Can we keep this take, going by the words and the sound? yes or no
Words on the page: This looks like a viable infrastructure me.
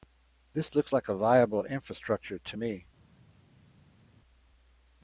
no